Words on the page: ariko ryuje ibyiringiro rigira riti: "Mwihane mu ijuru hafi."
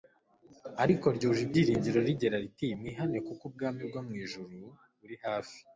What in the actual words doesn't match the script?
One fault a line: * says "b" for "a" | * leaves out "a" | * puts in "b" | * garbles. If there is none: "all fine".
* puts in "kuko ubwami bwo"
* puts in "buri"